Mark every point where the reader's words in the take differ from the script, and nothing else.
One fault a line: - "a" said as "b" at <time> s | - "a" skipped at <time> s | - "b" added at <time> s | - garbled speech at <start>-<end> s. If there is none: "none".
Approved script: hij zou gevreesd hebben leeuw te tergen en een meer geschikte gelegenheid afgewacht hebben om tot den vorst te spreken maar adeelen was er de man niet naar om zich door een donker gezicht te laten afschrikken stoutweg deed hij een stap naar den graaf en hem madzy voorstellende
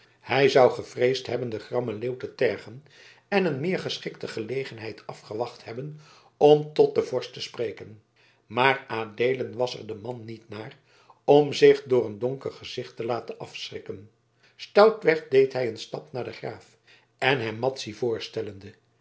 - "den grammen" added at 1.5 s